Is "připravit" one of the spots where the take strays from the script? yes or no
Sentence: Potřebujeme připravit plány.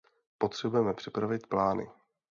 no